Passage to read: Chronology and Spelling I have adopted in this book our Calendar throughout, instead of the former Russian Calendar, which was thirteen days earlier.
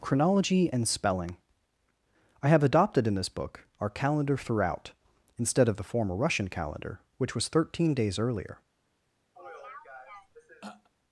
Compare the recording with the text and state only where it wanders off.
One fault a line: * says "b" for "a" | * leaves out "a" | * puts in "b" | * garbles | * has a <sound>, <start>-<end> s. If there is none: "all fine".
* has a throat clearing, 9.4-10.9 s